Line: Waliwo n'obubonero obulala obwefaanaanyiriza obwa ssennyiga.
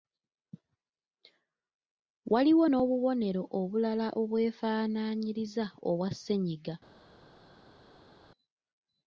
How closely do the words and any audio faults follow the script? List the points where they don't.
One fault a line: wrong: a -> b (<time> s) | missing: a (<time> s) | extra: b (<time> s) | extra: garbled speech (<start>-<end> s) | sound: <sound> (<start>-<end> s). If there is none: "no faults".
no faults